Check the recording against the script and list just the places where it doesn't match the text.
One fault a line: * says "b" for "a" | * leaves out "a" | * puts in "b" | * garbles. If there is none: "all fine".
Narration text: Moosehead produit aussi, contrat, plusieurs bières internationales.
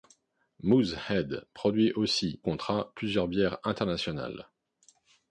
all fine